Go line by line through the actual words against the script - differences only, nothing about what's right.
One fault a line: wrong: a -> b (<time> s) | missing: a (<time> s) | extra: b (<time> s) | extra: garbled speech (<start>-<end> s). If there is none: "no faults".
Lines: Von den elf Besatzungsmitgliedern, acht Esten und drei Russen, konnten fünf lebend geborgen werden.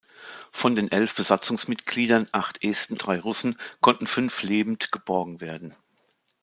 missing: und (3.0 s)